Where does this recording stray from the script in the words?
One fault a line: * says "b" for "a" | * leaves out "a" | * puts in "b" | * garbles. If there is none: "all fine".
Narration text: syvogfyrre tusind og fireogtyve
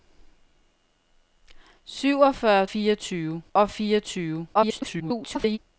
* says "fireogtyve" for "tusind"
* garbles